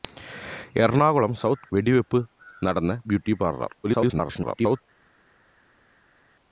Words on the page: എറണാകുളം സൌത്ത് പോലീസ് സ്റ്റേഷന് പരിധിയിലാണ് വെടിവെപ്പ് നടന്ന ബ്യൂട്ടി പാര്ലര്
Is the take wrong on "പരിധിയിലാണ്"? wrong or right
wrong